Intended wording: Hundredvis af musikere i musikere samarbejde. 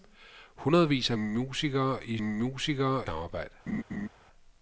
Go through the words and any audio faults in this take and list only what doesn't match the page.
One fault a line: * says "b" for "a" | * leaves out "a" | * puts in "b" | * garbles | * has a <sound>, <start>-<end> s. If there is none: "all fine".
* has a laugh, 3.7-4.1 s